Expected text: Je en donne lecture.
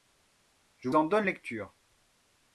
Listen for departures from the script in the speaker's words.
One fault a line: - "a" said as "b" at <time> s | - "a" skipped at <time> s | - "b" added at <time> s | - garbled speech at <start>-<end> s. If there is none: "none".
none